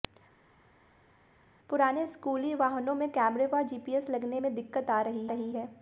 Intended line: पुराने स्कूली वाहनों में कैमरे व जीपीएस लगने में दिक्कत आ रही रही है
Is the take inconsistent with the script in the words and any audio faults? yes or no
no